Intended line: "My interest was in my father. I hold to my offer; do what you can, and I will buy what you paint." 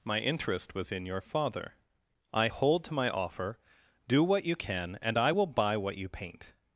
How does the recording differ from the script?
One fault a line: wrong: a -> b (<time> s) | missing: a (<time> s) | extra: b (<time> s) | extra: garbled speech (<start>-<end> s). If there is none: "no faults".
wrong: my -> your (1.1 s)